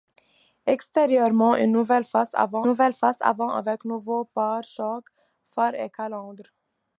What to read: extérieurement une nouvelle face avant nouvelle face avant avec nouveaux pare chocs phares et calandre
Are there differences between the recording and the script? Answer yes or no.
no